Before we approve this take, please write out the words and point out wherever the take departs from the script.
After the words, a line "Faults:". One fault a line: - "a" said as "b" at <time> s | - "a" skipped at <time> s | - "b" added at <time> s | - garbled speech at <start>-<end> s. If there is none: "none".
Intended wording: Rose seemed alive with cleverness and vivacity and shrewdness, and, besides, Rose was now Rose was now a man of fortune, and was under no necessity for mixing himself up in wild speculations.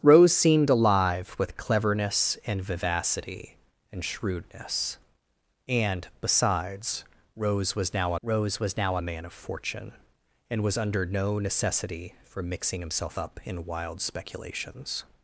Rose seemed alive with cleverness and vivacity and shrewdness, and, besides, Rose was now Rose was now a man of fortune, and was under no necessity for mixing himself up in wild speculations.
Faults:
none